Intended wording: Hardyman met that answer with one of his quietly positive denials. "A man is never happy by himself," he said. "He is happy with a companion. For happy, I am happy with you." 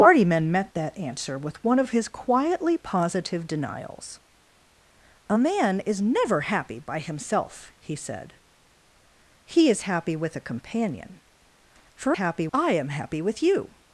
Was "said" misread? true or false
false